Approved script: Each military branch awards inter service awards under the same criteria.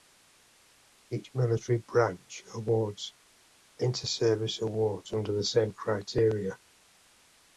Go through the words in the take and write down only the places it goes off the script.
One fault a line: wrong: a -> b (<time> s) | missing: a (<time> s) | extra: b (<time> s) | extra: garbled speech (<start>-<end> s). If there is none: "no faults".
no faults